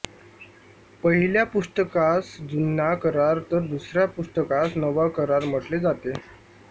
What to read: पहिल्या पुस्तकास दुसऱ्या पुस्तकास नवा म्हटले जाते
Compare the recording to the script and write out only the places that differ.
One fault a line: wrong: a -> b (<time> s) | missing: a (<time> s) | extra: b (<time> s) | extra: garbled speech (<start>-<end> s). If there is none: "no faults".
extra: जुना करार तर (2.4 s)
extra: करार (5.2 s)